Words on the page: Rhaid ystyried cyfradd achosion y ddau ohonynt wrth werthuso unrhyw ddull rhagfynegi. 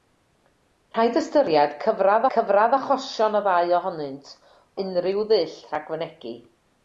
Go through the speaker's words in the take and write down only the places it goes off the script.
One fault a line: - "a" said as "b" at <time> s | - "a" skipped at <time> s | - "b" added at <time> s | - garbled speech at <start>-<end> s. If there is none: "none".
- "cyfradd" added at 2.3 s
- "wrth werthuso" skipped at 4.3 s